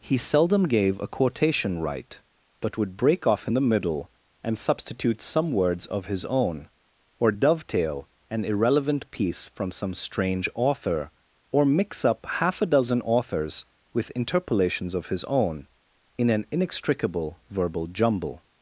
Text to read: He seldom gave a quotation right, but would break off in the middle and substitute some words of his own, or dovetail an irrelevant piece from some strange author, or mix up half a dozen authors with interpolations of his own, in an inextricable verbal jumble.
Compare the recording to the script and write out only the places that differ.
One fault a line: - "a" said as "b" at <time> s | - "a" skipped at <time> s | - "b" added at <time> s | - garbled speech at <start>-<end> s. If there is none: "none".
none